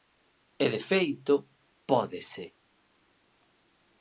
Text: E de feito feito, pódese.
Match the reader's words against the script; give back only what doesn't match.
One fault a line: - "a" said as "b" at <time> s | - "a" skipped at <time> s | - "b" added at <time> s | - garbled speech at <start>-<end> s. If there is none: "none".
- "feito" skipped at 1.3 s